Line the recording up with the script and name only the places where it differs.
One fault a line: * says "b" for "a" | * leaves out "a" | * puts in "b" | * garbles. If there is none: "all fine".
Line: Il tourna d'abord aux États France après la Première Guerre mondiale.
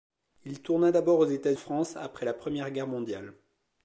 all fine